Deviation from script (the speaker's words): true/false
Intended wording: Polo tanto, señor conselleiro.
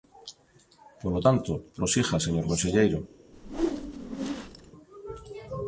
true